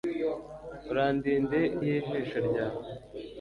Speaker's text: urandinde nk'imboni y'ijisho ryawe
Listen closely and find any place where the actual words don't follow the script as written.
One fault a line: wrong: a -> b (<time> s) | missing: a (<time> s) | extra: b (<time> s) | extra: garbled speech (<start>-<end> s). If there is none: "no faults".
missing: nk'imboni (1.6 s)